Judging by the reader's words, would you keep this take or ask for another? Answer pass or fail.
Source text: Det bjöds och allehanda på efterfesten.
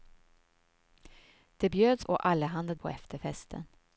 pass